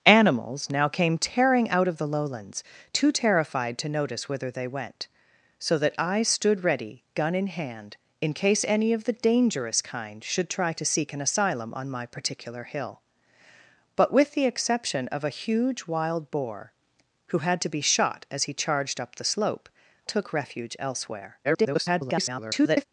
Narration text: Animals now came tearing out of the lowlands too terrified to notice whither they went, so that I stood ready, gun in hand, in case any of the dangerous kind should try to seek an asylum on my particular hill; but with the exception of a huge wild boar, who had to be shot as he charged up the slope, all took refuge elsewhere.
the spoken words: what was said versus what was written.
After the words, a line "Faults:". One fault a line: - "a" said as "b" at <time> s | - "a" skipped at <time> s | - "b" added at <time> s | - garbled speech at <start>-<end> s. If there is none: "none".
Animals now came tearing out of the lowlands too terrified to notice whither they went, so that I stood ready, gun in hand, in case any of the dangerous kind should try to seek an asylum on my particular hill; but with the exception of a huge wild boar, who had to be shot as he charged up the slope, took refuge elsewhere. [garbled]
Faults:
- "all" skipped at 19.7 s
- garbled speech at 21.4-22.9 s